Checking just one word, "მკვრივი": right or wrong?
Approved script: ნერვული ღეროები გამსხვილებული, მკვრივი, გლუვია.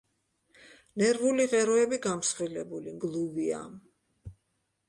wrong